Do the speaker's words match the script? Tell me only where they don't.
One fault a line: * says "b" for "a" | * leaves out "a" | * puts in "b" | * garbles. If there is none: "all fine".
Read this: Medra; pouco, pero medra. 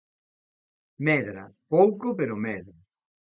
all fine